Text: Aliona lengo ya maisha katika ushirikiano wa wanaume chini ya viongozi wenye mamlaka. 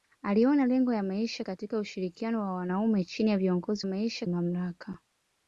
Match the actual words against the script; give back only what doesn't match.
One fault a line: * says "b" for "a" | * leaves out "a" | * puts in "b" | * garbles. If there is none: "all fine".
* says "maisha" for "wenye"